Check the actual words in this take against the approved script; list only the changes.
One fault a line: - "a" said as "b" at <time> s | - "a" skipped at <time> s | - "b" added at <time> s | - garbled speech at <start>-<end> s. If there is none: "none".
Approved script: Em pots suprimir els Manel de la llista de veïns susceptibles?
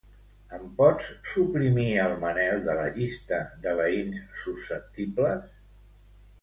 - "els" said as "el" at 2.0 s